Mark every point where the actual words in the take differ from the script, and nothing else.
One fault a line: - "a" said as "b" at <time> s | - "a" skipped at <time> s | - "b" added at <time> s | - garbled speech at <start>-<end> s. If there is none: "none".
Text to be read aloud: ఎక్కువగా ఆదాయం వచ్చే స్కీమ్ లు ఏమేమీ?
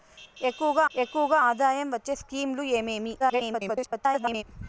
- "ఎక్కువగా" added at 0.9 s
- garbled speech at 3.2-4.4 s